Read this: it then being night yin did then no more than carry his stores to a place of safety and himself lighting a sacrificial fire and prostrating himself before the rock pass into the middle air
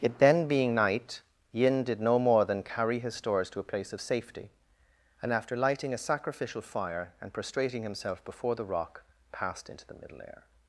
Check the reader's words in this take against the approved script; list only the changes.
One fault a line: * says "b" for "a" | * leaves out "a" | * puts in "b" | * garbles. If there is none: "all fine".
* leaves out "then"
* says "after" for "himself"
* says "passed" for "pass"